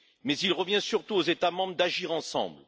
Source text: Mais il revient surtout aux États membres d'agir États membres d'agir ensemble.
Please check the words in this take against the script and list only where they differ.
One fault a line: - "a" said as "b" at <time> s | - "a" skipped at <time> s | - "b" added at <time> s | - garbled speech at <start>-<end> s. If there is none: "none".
- "États membres d'agir" skipped at 2.1 s